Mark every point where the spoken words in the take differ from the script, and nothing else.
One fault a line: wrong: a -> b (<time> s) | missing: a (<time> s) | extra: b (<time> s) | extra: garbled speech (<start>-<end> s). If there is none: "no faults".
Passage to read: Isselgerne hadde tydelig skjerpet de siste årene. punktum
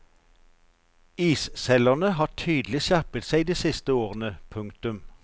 wrong: hadde -> har (2.2 s)
extra: seg (3.3 s)